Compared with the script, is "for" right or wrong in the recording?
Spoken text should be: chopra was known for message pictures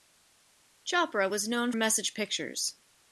wrong